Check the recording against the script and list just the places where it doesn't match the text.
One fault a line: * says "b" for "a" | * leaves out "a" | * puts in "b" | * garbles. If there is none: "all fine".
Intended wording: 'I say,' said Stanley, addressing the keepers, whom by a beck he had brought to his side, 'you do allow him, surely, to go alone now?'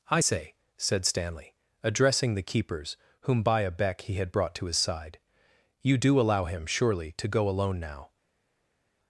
all fine